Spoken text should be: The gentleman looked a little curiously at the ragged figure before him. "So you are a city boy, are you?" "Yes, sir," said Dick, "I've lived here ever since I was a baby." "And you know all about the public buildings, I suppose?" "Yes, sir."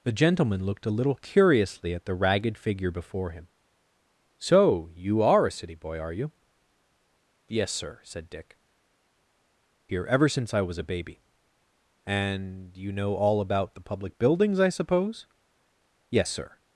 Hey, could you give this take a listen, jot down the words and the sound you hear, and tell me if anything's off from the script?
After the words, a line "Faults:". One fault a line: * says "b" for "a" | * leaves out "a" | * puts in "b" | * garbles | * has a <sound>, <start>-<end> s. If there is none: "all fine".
The gentleman looked a little curiously at the ragged figure before him. "So you are a city boy, are you?" "Yes, sir," said Dick, "Here ever since I was a baby." "And you know all about the public buildings, I suppose?" "Yes, sir."
Faults:
* leaves out "I've lived"